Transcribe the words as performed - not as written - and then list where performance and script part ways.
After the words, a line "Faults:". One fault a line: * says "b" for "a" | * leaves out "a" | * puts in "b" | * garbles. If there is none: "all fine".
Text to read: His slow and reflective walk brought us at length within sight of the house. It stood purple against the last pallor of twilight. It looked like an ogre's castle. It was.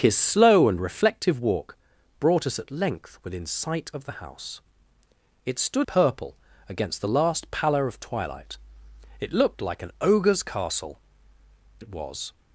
His slow and reflective walk brought us at length within sight of the house. It stood purple against the last pallor of twilight. It looked like an ogre's castle. It was.
Faults:
all fine